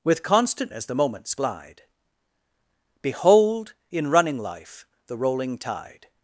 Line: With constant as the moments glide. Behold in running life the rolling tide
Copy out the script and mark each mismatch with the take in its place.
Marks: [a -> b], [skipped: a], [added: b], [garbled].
With constant as the moments glide. Behold in running life the rolling tide